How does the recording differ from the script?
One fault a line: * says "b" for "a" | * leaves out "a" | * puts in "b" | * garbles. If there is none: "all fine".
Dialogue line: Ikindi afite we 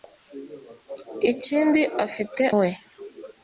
all fine